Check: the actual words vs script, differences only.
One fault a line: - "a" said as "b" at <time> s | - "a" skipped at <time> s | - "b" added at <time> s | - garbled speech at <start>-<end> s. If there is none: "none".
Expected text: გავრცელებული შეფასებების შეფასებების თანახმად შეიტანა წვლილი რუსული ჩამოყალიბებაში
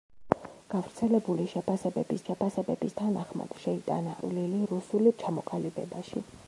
none